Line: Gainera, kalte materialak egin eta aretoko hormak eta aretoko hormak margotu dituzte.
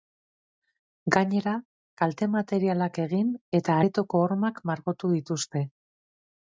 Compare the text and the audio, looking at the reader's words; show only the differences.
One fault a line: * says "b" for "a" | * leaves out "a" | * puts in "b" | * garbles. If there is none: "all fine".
* leaves out "eta aretoko hormak"